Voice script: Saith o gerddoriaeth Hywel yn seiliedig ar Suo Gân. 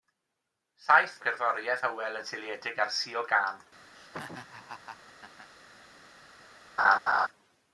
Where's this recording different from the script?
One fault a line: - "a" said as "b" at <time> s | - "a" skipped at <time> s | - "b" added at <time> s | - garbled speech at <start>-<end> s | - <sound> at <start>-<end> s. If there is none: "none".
- laugh at 4.0-5.5 s
- laugh at 6.8-7.3 s